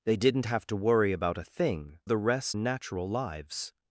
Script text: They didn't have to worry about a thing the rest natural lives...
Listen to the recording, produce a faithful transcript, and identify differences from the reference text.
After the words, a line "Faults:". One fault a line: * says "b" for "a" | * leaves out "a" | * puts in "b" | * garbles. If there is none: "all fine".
They didn't have to worry about a thing the rest natural lives...
Faults:
all fine